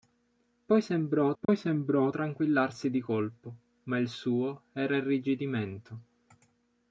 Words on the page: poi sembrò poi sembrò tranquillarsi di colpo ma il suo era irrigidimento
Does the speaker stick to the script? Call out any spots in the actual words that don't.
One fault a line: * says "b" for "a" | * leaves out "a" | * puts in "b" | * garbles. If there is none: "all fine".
all fine